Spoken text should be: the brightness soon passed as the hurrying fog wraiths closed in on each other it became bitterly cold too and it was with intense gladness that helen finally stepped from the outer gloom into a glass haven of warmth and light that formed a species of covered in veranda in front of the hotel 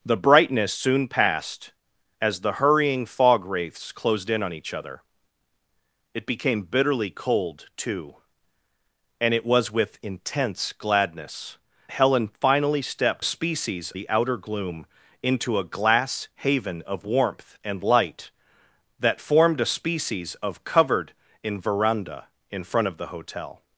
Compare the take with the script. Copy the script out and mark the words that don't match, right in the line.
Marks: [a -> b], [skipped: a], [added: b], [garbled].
the brightness soon passed as the hurrying fog wraiths closed in on each other it became bitterly cold too and it was with intense gladness [skipped: that] helen finally stepped [from -> species] the outer gloom into a glass haven of warmth and light that formed a species of covered in veranda in front of the hotel